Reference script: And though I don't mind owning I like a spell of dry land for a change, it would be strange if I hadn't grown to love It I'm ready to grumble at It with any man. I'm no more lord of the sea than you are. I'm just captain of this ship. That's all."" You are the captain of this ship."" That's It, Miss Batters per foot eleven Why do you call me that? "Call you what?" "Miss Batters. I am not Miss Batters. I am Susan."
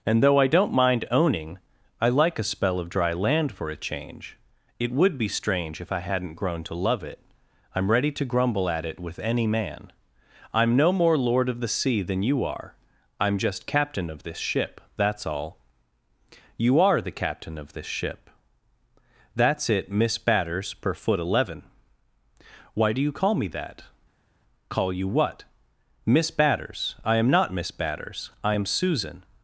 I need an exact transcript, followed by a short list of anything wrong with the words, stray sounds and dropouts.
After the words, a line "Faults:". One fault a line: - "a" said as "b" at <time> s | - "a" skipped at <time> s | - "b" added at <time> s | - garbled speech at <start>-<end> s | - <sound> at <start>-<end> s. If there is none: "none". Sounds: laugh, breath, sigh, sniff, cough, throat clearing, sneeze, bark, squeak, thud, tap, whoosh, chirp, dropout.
And though I don't mind owning I like a spell of dry land for a change, it would be strange if I hadn't grown to love It I'm ready to grumble at It with any man. I'm no more lord of the sea than you are. I'm just captain of this ship. That's all."" You are the captain of this ship."" That's It, Miss Batters per foot eleven Why do you call me that? "Call you what?" "Miss Batters. I am not Miss Batters. I am Susan."
Faults:
none